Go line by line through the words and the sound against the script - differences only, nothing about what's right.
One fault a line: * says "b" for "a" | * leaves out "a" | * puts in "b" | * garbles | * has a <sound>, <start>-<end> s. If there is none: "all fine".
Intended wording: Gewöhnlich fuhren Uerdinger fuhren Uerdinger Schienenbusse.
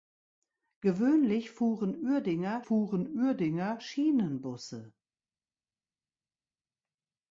all fine